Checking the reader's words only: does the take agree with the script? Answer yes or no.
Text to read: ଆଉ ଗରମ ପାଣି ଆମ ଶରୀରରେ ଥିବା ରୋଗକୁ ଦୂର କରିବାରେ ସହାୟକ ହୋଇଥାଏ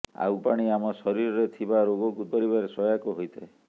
no